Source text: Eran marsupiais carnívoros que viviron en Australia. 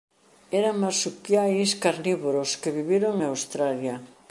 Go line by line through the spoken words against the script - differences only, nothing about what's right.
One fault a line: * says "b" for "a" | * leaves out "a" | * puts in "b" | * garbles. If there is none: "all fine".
all fine